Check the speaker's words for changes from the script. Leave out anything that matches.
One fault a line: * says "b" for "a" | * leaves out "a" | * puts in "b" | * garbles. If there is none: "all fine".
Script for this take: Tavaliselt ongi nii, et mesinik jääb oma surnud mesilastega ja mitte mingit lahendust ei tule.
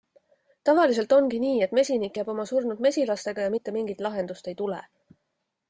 all fine